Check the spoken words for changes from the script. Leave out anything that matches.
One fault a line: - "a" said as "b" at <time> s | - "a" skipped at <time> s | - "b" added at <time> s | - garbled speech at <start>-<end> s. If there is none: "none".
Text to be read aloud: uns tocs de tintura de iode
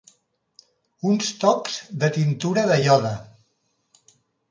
none